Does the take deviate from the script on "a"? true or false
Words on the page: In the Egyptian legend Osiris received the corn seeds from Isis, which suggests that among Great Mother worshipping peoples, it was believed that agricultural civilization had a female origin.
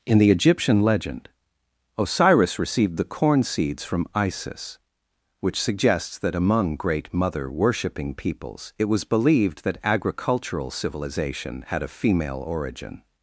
false